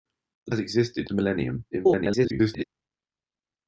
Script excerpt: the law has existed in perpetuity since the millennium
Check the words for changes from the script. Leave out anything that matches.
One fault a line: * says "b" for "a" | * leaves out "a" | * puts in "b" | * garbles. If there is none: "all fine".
* leaves out "law"
* leaves out "in perpetuity since"
* garbles